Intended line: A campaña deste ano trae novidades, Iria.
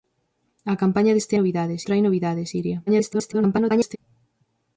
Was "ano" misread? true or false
true